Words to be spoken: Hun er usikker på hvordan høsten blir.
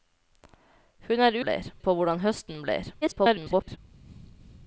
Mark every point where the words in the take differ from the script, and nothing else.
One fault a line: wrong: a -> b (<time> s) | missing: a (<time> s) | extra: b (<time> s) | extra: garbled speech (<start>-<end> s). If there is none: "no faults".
wrong: usikker -> blir (1.4 s)
extra: garbled speech (3.0-3.8 s)